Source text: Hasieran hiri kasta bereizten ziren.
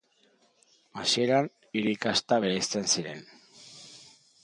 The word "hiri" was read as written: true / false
true